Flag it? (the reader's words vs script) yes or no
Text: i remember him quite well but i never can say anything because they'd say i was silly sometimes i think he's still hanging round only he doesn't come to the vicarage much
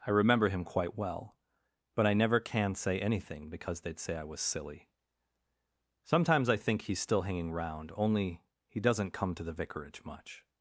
no